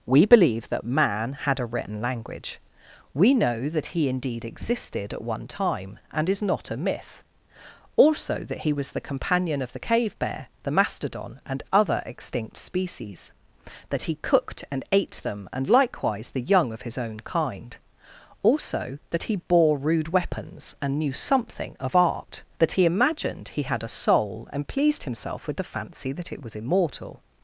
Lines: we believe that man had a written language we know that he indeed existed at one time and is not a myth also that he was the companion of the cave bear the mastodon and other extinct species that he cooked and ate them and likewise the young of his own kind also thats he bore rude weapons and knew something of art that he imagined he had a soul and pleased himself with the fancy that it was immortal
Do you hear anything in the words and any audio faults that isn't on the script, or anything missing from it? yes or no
yes